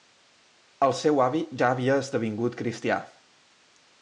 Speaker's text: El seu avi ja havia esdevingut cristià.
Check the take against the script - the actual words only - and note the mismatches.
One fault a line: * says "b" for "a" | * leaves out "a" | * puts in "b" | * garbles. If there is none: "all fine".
all fine